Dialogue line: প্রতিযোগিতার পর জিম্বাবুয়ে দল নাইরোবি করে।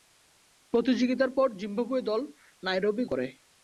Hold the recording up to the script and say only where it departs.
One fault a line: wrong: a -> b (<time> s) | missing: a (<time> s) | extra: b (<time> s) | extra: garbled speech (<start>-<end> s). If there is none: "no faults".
no faults